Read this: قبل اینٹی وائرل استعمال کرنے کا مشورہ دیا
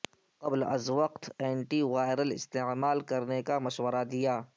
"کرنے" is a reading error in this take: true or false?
false